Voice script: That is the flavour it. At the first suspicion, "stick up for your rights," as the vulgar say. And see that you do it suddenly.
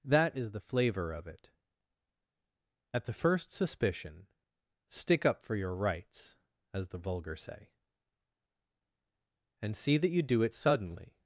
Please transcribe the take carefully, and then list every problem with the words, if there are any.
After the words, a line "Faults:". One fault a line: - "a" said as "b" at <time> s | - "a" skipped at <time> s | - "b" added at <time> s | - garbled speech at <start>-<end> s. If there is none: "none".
That is the flavour of it. At the first suspicion, "stick up for your rights," as the vulgar say. And see that you do it suddenly.
Faults:
- "of" added at 1.1 s